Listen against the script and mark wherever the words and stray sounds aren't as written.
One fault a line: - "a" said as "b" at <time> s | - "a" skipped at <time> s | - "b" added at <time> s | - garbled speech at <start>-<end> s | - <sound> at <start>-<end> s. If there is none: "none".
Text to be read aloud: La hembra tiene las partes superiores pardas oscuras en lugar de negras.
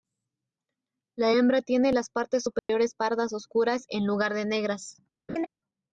- dropout at 2.6-2.7 s
- laugh at 5.3-5.5 s